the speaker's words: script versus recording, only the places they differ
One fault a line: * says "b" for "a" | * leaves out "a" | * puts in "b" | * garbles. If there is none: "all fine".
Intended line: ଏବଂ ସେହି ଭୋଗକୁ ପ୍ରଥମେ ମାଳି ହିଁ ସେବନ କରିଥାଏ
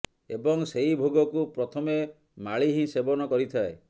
all fine